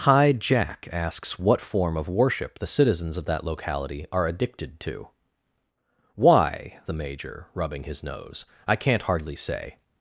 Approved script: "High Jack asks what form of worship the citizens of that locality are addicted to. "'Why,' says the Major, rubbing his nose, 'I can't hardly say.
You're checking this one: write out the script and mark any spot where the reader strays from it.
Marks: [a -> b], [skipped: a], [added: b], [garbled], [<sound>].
"High Jack asks what form of worship the citizens of that locality are addicted to. "'Why,' [skipped: says] the Major, rubbing his nose, 'I can't hardly say.